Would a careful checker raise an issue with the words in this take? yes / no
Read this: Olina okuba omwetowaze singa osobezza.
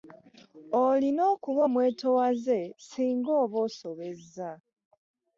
yes